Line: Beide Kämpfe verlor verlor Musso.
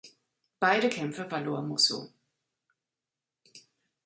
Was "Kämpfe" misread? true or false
false